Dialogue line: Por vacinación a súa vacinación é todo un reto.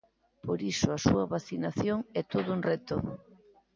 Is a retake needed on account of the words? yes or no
yes